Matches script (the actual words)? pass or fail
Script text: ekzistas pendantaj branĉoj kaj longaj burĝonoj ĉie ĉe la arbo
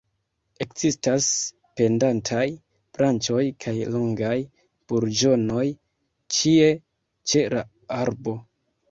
pass